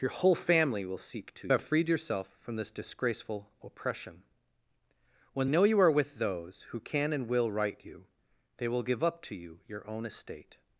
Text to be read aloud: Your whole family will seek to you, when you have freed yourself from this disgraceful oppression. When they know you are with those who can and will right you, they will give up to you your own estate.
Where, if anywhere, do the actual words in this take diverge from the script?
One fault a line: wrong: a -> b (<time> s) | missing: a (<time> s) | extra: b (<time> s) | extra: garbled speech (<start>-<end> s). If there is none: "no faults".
missing: you when you (1.5 s)
missing: they (5.5 s)